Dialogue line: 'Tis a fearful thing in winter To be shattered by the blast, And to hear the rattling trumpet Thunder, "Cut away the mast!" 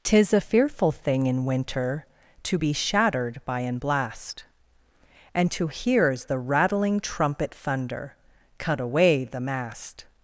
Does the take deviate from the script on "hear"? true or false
true